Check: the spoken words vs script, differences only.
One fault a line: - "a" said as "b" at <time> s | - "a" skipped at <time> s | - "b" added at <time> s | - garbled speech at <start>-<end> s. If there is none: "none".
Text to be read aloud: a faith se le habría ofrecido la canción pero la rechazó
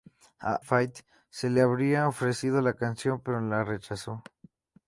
none